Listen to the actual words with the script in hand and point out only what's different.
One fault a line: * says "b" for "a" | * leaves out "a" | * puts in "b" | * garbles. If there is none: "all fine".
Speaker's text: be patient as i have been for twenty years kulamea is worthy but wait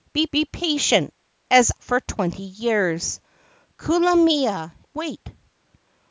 * puts in "be"
* leaves out "i have been"
* leaves out "is worthy but"